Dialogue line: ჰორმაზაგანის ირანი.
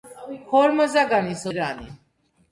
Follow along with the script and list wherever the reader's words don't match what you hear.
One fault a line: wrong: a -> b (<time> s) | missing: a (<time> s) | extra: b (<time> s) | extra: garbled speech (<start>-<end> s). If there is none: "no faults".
no faults